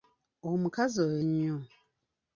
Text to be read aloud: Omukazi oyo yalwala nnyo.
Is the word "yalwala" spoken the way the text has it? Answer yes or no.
no